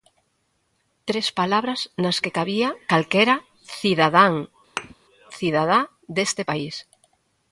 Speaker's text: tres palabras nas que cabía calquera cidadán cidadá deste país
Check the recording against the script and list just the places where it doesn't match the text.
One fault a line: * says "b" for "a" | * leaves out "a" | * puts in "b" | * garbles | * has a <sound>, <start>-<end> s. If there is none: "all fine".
* has a thud, 4.8-4.9 s